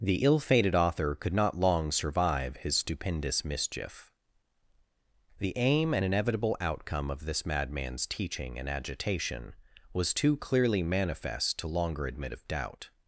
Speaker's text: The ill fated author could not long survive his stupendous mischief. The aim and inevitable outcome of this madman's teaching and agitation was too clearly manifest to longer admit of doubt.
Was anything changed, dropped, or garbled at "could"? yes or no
no